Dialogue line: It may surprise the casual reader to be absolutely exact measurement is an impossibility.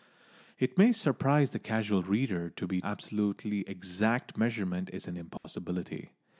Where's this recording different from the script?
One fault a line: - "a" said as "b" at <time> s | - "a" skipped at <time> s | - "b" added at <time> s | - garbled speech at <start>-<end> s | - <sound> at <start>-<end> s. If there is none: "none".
- dropout at 5.4-5.4 s